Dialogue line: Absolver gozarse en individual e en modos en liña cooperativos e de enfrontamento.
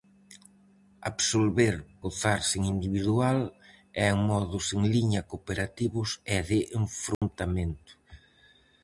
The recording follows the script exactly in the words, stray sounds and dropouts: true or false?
false